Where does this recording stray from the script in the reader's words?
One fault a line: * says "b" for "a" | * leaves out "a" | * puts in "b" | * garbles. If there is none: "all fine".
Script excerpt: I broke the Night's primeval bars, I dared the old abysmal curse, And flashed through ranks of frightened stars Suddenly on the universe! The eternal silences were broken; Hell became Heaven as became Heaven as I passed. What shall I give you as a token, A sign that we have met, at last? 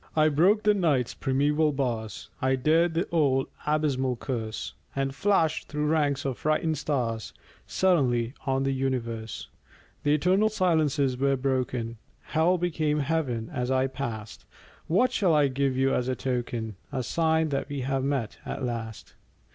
* leaves out "became Heaven as"